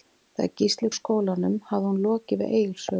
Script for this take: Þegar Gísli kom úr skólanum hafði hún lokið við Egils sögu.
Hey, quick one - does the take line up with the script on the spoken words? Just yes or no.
no